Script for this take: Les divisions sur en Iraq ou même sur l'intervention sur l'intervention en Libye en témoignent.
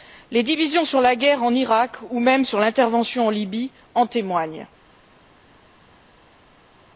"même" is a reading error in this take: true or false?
false